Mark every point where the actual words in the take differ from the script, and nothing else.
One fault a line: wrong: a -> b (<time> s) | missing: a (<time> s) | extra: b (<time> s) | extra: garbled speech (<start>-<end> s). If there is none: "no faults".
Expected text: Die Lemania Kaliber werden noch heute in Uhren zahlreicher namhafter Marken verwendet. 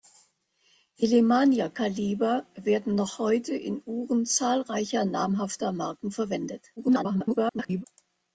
extra: garbled speech (6.8-7.8 s)